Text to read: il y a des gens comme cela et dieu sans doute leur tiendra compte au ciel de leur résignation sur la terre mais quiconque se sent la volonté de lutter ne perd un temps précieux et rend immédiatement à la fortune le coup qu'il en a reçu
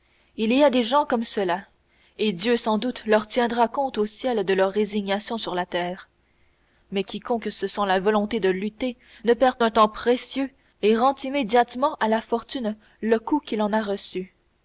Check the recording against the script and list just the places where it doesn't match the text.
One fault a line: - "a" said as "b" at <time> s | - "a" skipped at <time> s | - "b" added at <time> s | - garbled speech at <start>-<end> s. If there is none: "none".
none